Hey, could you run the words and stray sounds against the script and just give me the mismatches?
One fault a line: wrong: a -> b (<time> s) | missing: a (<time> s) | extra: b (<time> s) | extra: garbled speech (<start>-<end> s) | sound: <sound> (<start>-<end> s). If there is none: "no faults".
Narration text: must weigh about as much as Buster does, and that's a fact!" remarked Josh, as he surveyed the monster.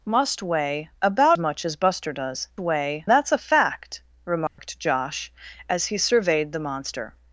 missing: as (1.4 s)
wrong: and -> weigh (2.6 s)
sound: dropout (4.5-4.6 s)